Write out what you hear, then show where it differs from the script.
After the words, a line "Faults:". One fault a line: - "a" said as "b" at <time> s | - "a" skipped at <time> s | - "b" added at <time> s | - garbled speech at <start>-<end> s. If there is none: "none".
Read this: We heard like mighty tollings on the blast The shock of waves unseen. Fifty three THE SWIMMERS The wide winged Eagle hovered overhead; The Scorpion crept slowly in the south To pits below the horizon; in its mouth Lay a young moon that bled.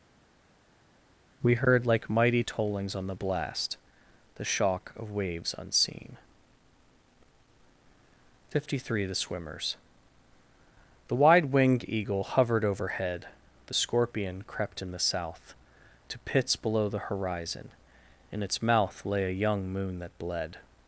We heard like mighty tollings on the blast The shock of waves unseen. Fifty three THE SWIMMERS The wide winged Eagle hovered overhead; The Scorpion crept in the south To pits below the horizon; in its mouth Lay a young moon that bled.
Faults:
- "slowly" skipped at 14.8 s